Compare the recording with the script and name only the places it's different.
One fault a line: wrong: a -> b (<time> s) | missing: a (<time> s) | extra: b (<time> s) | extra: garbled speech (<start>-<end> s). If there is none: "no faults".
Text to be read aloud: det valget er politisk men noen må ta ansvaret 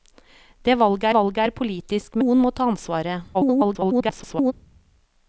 extra: valget (1.2 s)
missing: men (2.2 s)
extra: garbled speech (3.3-4.5 s)